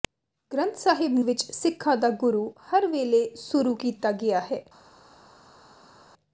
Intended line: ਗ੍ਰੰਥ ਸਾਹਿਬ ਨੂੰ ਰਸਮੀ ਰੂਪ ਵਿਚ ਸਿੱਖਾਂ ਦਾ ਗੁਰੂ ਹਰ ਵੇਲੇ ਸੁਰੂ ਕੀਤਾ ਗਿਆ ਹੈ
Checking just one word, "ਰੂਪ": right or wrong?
wrong